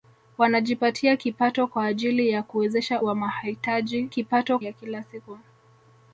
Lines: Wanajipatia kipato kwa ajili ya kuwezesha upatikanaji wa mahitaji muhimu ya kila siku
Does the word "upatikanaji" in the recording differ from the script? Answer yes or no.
yes